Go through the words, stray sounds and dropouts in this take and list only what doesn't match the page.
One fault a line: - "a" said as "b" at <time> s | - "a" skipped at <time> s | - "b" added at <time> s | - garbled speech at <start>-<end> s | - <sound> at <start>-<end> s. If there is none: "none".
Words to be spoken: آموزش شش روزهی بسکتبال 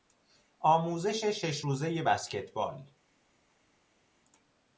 none